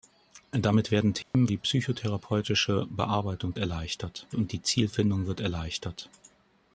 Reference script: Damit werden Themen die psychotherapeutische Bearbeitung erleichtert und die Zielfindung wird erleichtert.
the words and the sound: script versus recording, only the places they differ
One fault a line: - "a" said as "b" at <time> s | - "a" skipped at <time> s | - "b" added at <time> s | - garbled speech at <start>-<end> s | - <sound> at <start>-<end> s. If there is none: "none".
- dropout at 1.2-1.3 s